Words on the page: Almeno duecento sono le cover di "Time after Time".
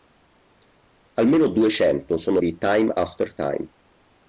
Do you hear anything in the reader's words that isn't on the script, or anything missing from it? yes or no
yes